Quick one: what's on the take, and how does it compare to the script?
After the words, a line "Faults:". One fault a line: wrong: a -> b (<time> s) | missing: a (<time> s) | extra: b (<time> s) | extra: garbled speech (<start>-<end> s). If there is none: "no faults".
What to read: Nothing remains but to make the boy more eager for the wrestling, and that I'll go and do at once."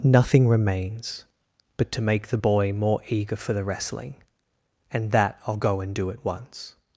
Nothing remains but to make the boy more eager for the wrestling, and that I'll go and do at once."
Faults:
no faults